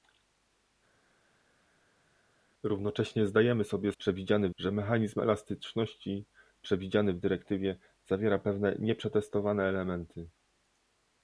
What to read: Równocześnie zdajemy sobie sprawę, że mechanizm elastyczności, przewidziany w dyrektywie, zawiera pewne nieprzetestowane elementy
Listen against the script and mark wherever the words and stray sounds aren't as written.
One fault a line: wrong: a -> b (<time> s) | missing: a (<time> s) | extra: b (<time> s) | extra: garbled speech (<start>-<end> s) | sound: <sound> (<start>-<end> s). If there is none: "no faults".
wrong: sprawę -> przewidziany (4.0 s)